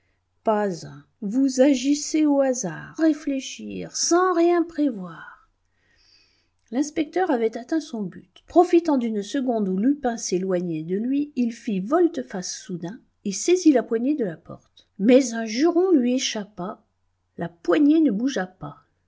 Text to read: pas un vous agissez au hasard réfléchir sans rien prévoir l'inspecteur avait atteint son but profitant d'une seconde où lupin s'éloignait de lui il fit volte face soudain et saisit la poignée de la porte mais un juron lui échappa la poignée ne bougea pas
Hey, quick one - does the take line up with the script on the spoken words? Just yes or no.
yes